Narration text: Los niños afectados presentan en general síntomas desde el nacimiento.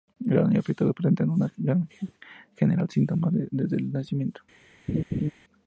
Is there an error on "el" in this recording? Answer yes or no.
no